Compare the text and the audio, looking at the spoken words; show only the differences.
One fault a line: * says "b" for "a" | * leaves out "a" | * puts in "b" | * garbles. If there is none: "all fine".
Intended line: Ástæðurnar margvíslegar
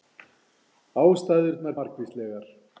all fine